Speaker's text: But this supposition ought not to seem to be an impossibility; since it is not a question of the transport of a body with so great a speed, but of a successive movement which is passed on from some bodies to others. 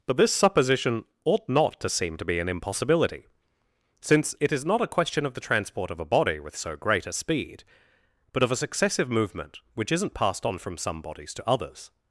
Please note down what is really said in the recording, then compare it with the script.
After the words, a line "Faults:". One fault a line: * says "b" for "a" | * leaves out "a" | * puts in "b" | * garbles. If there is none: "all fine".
But this supposition ought not to seem to be an impossibility; since it is not a question of the transport of a body with so great a speed, but of a successive movement which isn't passed on from some bodies to others.
Faults:
* says "isn't" for "is"